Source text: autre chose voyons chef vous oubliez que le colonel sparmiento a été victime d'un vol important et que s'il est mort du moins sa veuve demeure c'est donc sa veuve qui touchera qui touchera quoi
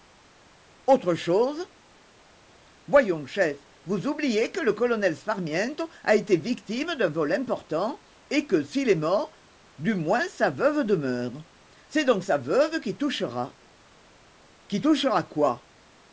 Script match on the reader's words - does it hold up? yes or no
yes